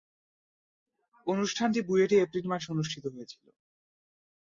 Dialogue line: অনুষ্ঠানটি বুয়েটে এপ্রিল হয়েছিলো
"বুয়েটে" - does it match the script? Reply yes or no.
yes